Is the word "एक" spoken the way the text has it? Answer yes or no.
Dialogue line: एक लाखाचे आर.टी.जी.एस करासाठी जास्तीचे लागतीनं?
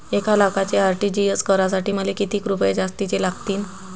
yes